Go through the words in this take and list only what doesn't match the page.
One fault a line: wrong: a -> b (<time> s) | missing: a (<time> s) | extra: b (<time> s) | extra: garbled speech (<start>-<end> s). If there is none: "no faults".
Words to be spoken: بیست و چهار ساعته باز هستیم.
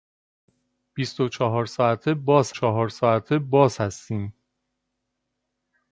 extra: چهار ساعته باز (2.5 s)